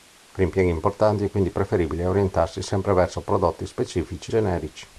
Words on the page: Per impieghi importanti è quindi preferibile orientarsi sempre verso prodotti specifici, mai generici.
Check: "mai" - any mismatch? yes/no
yes